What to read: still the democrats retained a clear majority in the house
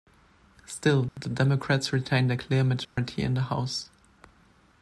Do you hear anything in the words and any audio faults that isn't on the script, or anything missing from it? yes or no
yes